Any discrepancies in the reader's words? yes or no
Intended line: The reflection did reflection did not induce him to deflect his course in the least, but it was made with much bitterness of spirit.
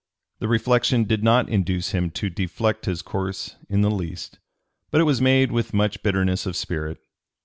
yes